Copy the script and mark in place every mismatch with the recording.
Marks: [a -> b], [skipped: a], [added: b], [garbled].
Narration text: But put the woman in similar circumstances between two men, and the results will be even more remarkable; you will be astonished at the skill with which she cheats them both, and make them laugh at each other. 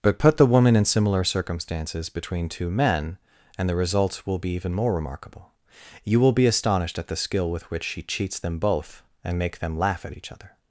But put the woman in similar circumstances between two men, and the results will be even more remarkable; you will be astonished at the skill with which she cheats them both, and make them laugh at each other.